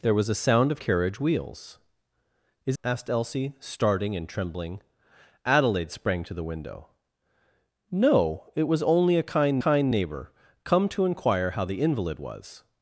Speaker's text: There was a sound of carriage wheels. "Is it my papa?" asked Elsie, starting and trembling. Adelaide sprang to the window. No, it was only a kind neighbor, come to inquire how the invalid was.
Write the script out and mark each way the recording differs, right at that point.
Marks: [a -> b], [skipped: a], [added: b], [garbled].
There was a sound of carriage wheels. "Is [skipped: it my papa?"] asked Elsie, starting and trembling. Adelaide sprang to the window. No, it was only a kind [added: kind] neighbor, come to inquire how the invalid was.